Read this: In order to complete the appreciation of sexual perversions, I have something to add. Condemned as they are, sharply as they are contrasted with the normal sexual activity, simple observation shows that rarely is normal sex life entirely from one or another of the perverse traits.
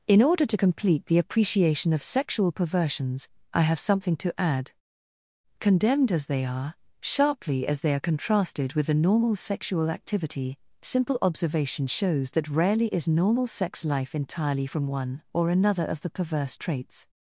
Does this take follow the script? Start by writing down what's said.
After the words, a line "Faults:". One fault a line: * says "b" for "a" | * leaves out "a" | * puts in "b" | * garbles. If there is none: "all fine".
In order to complete the appreciation of sexual perversions, I have something to add. Condemned as they are, sharply as they are contrasted with the normal sexual activity, simple observation shows that rarely is normal sex life entirely from one or another of the perverse traits.
Faults:
all fine